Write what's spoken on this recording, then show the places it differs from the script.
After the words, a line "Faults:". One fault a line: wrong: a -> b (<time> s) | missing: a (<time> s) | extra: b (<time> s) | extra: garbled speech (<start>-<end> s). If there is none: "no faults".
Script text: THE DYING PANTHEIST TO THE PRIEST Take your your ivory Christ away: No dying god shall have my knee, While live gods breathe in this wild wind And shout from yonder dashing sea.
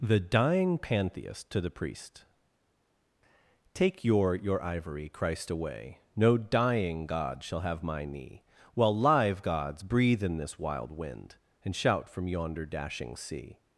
THE DYING PANTHEIST TO THE PRIEST Take your your ivory Christ away: No dying god shall have my knee, While live gods breathe in this wild wind And shout from yonder dashing sea.
Faults:
no faults